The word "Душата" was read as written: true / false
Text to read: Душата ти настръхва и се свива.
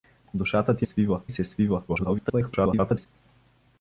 true